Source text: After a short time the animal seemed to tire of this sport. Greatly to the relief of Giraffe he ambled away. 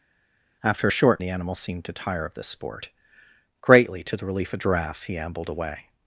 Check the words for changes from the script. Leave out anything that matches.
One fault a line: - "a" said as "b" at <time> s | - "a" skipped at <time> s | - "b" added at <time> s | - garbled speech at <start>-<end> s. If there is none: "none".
- "time" skipped at 1.2 s